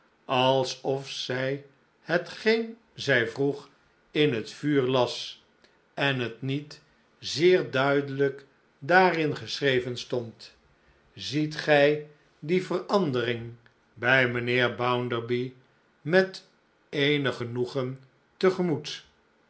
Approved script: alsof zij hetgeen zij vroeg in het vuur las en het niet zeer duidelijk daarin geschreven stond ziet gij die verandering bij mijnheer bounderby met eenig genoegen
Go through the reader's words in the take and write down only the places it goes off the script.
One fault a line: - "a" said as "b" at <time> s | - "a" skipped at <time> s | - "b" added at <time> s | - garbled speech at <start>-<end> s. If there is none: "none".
none